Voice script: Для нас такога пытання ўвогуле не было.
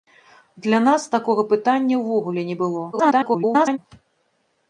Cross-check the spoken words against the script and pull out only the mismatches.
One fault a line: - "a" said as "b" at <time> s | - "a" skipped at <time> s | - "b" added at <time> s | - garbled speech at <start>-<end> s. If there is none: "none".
- garbled speech at 2.9-3.8 s